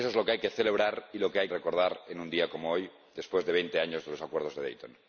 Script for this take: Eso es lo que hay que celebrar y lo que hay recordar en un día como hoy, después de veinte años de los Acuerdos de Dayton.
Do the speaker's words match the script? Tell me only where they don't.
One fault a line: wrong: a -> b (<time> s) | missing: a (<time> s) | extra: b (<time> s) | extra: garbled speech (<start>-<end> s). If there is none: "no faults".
no faults